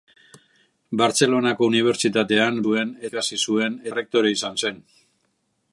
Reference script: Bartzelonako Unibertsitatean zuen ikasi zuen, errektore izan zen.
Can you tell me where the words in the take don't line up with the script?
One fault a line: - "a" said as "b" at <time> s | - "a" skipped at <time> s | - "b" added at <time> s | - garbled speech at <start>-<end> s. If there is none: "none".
none